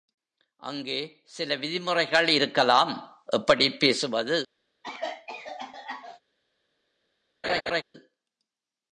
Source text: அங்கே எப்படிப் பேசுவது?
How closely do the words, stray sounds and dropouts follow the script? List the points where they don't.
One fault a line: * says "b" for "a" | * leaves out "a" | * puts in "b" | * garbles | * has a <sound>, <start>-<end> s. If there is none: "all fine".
* puts in "சில விதிமுறைகள் இருக்கலாம்"
* has a cough, 4.8-6.2 s
* has a laugh, 7.4-7.8 s